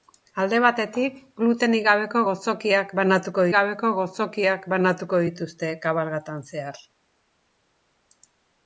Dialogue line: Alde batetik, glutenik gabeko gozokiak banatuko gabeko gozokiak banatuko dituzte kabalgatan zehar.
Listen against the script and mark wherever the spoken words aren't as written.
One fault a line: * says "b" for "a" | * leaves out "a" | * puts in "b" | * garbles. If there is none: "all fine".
all fine